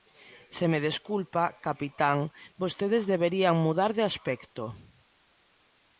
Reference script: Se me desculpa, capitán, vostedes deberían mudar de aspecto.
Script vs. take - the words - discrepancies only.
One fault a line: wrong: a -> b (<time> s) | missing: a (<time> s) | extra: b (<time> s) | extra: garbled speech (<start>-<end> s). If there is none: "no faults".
no faults